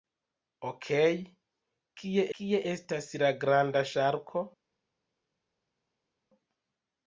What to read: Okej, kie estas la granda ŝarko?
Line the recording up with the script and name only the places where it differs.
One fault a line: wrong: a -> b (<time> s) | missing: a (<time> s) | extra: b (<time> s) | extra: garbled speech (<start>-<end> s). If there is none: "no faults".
extra: kie (2.4 s)